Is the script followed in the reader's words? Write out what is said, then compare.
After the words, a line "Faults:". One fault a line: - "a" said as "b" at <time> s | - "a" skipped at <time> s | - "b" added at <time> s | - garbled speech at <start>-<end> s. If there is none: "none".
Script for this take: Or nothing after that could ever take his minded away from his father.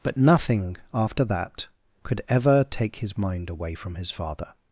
But nothing after that could ever take his mind away from his father.
Faults:
- "Or" said as "But" at 0.0 s
- "minded" said as "mind" at 3.2 s